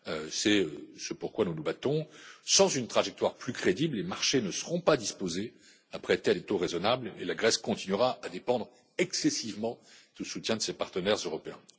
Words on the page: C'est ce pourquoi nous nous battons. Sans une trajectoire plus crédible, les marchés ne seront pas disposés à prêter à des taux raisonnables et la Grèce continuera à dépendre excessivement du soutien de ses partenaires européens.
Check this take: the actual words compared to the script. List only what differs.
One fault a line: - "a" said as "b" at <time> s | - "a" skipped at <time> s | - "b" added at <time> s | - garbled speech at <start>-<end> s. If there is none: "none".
none